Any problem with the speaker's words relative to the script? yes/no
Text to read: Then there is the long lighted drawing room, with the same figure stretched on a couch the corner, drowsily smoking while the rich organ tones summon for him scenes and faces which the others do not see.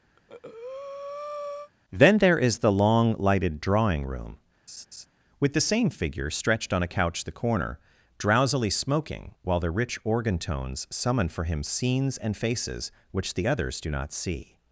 no